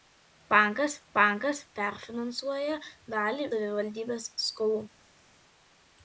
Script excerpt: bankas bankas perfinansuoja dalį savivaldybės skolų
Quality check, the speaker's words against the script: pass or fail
pass